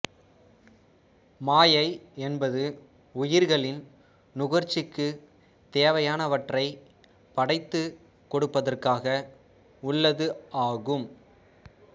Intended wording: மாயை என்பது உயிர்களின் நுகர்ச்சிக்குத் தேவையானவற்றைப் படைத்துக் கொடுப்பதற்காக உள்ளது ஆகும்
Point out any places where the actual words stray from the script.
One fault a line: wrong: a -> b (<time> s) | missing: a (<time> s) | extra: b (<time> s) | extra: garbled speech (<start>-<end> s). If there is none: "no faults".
no faults